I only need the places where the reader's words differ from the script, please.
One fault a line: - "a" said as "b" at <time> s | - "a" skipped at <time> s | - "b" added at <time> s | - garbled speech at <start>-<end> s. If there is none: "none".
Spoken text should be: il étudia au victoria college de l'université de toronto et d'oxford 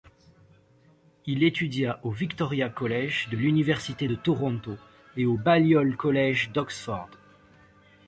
- "au balliol college" added at 5.2 s